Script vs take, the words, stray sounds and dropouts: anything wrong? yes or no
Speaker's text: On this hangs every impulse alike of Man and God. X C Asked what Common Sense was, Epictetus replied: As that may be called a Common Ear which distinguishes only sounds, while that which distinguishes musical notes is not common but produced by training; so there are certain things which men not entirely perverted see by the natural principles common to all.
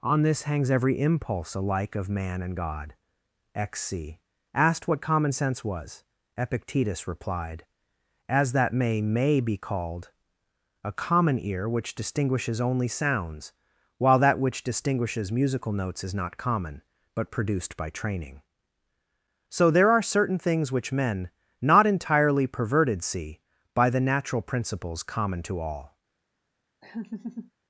yes